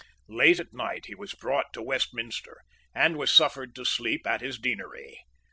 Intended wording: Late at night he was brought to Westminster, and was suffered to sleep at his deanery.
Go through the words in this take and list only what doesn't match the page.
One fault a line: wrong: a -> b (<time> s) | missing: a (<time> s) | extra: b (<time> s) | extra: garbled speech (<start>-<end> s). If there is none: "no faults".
no faults